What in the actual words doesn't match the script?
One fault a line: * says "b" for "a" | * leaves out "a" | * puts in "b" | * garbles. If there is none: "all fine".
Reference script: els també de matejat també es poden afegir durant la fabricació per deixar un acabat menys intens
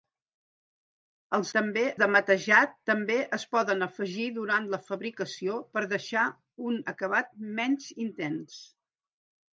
all fine